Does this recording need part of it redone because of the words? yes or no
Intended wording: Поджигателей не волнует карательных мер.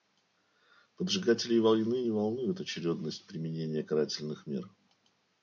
yes